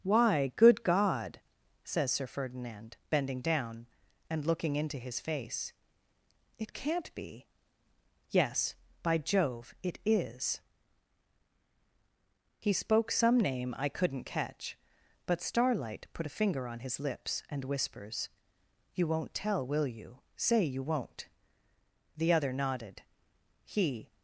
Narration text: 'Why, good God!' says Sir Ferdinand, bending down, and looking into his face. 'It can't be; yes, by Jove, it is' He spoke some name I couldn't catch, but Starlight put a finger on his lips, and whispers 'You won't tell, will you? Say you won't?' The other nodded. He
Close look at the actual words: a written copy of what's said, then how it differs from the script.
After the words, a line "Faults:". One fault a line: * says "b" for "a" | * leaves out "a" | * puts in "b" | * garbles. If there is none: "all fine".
'Why, good God!' says Sir Ferdinand, bending down, and looking into his face. 'It can't be; yes, by Jove, it is' He spoke some name I couldn't catch, but Starlight put a finger on his lips, and whispers 'You won't tell, will you? Say you won't?' The other nodded. He
Faults:
all fine